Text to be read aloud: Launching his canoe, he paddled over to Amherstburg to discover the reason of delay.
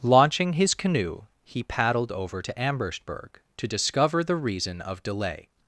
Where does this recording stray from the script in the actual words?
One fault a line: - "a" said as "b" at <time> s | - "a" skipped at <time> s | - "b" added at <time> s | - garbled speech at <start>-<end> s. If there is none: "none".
none